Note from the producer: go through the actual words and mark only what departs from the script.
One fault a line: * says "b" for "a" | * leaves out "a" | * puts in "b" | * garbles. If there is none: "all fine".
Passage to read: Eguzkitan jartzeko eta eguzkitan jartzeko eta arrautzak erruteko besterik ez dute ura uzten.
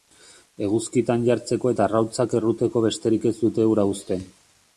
* leaves out "eguzkitan jartzeko eta"